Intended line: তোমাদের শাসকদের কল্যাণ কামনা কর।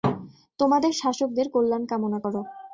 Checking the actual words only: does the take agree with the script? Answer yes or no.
yes